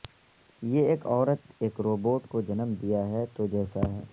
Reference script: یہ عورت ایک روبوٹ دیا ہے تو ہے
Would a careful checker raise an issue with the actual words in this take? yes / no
yes